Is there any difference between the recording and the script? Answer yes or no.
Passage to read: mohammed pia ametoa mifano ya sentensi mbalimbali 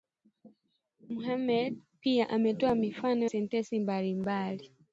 yes